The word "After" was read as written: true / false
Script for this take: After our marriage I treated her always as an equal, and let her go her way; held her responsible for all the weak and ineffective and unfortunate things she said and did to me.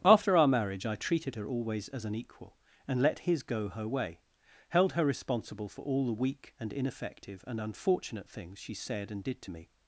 true